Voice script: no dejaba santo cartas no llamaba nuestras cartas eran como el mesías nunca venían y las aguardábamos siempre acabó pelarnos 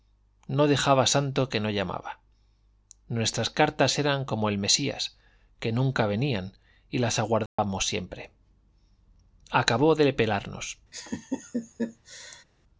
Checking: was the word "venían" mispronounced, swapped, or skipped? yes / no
no